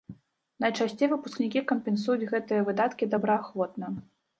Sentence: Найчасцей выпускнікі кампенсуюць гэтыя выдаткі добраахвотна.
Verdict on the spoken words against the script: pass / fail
pass